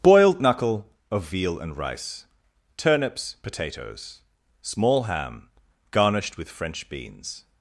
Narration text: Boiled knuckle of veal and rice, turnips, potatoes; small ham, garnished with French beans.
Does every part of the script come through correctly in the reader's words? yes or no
yes